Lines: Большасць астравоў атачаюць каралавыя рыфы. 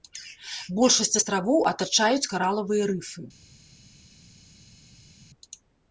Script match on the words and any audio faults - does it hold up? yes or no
yes